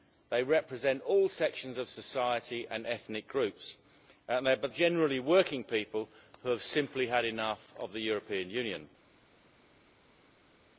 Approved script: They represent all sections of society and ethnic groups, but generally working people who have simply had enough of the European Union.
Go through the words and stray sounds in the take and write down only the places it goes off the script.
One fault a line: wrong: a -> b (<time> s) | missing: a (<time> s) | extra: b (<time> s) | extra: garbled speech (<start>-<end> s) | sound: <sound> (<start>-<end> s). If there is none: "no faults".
no faults